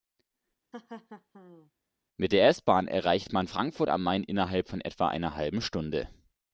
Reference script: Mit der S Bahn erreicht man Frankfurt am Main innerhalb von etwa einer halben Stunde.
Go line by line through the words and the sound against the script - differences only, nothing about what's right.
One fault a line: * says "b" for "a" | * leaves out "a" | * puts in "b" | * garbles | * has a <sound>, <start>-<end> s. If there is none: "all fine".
* has a laugh, 0.7-1.7 s